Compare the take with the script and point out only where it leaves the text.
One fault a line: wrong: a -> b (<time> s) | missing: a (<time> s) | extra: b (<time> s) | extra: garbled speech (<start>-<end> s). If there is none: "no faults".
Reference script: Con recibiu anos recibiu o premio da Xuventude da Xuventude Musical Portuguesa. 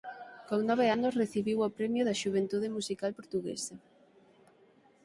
wrong: recibiu -> nove (0.7 s)
missing: da Xuventude (2.7 s)